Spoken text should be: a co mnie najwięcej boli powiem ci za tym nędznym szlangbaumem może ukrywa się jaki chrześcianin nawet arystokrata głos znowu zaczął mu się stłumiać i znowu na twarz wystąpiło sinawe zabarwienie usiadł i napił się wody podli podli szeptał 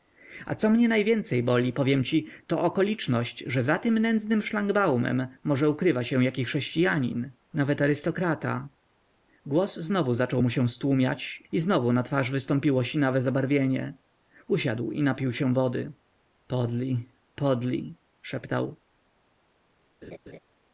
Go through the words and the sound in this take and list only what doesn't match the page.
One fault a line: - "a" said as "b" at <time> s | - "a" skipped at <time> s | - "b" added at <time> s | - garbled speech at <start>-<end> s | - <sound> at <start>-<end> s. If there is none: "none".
- "to okoliczność że" added at 2.5 s
- laugh at 20.0-20.4 s